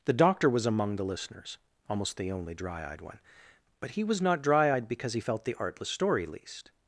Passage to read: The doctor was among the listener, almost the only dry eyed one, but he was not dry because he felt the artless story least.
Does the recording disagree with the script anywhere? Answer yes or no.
yes